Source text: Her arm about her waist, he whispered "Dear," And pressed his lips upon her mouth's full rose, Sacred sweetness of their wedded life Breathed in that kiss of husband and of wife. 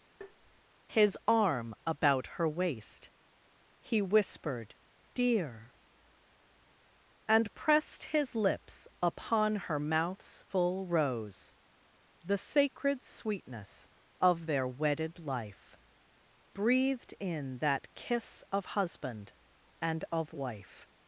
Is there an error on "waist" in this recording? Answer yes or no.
no